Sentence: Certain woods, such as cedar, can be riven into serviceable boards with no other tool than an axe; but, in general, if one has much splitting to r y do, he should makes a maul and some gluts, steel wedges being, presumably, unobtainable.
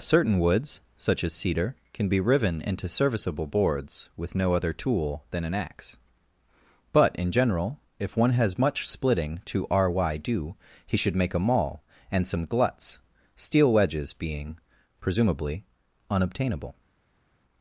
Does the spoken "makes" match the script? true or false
false